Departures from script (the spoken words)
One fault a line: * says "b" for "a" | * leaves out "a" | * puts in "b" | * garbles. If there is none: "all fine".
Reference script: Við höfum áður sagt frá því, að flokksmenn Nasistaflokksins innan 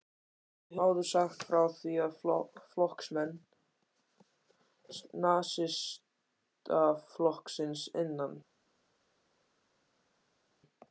* leaves out "höfum"